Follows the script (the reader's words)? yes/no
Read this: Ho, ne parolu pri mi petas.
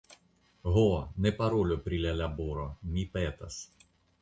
no